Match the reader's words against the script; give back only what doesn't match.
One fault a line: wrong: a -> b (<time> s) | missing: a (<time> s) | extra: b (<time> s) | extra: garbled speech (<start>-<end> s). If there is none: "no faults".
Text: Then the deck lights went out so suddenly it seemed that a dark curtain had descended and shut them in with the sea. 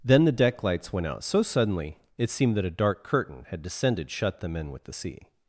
missing: and (4.1 s)